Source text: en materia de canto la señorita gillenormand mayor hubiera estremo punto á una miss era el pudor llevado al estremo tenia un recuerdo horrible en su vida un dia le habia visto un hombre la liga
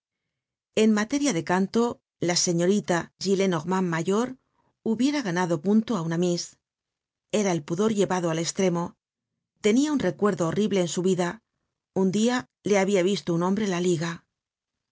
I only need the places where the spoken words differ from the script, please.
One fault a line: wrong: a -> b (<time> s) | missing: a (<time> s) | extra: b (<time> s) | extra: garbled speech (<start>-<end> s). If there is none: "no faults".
wrong: estremo -> ganado (5.3 s)